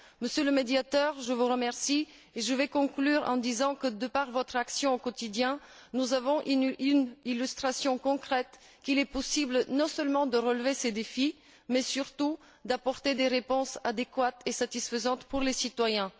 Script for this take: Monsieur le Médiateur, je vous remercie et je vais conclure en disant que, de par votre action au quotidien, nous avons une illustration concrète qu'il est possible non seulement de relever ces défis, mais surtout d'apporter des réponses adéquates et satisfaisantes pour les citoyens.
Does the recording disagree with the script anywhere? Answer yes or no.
no